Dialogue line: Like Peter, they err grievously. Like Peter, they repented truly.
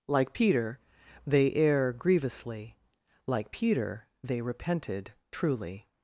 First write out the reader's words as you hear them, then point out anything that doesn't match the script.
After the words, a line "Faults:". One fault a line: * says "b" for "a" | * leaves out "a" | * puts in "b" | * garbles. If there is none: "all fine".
Like Peter, they err grievously. Like Peter, they repented truly.
Faults:
all fine